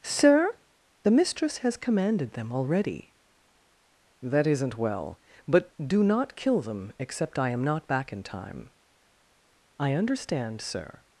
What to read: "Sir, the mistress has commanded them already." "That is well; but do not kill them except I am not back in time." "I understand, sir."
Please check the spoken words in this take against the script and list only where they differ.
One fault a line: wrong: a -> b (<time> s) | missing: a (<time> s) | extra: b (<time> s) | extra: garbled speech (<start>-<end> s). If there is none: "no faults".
wrong: is -> isn't (4.5 s)